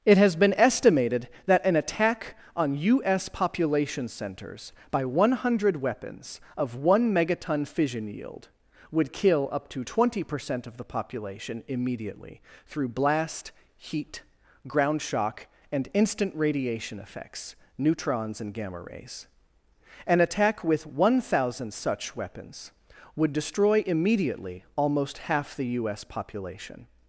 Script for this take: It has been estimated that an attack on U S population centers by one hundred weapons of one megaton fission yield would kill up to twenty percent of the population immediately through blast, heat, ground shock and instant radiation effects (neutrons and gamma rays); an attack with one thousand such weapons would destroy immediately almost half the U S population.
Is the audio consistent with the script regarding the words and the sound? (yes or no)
yes